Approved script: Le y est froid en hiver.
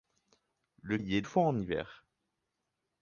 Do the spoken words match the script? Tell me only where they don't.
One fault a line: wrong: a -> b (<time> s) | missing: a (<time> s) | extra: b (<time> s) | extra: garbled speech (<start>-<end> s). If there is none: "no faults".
no faults